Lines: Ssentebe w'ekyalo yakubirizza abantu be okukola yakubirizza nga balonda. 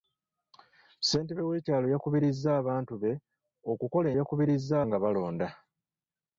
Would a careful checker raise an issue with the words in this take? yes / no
no